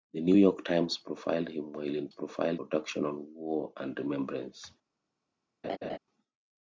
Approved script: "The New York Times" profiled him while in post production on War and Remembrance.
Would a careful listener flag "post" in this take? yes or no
yes